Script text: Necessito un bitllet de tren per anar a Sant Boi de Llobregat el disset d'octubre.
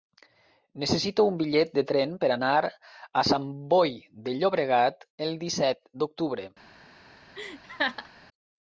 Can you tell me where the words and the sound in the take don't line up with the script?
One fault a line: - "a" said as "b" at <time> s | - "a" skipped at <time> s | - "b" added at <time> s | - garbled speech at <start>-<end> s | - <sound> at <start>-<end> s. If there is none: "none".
- laugh at 7.3-8.1 s